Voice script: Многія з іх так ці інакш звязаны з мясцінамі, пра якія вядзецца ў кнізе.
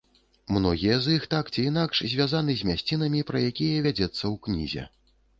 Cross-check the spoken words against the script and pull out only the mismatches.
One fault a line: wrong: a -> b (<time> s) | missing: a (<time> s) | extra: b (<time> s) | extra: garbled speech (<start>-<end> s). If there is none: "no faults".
no faults